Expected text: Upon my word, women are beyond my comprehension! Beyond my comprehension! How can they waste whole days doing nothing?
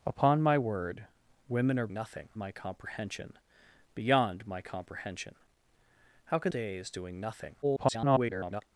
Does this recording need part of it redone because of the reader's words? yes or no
yes